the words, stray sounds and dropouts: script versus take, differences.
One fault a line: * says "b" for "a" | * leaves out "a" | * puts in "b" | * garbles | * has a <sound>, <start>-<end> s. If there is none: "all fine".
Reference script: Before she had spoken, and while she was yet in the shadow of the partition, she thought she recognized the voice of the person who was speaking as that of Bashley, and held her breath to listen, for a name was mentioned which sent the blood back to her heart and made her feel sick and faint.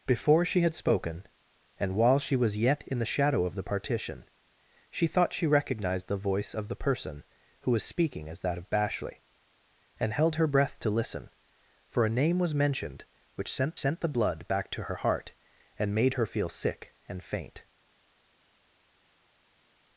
* puts in "sent"